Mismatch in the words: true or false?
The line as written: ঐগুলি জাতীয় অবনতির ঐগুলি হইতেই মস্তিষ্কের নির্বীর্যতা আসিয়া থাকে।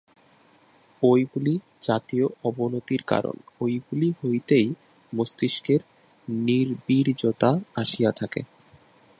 true